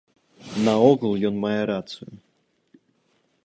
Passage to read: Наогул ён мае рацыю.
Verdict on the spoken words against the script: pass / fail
pass